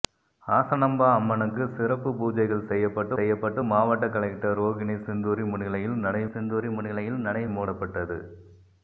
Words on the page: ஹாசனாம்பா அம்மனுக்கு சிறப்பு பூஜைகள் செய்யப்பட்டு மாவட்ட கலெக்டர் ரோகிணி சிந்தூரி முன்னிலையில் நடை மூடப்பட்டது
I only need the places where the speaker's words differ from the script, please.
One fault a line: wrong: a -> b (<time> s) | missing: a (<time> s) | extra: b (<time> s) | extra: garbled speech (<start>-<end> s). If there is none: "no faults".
extra: செய்யப்பட்டு (3.1 s)
extra: சிந்தூரி முன்னிலையில் நடை (6.3 s)